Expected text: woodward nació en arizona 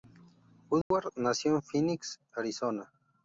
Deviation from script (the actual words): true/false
true